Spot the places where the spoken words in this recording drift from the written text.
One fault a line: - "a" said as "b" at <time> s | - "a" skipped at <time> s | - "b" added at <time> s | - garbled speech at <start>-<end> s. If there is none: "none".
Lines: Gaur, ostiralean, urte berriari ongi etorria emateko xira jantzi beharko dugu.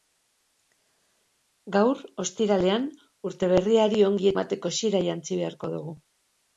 - "etorria" skipped at 4.3 s